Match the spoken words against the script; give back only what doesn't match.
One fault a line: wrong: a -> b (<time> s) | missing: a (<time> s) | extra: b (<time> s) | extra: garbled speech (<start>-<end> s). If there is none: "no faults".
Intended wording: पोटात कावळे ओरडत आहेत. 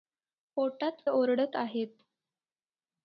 missing: कावळे (1.0 s)